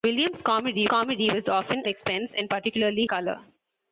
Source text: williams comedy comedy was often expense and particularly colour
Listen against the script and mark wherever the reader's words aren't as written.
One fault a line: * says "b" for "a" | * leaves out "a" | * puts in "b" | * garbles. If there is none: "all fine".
all fine